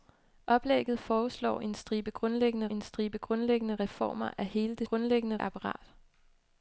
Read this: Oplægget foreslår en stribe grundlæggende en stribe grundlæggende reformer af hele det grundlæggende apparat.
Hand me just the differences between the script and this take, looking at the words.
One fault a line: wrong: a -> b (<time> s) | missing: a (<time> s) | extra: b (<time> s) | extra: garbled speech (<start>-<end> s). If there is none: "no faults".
no faults